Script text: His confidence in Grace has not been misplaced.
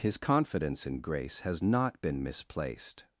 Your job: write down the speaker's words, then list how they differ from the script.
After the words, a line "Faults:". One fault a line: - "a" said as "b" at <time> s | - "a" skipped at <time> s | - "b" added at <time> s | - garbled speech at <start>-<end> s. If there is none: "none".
His confidence in Grace has not been misplaced.
Faults:
none